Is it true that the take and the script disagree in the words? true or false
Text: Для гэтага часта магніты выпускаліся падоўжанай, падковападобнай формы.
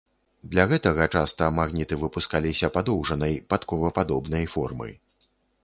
false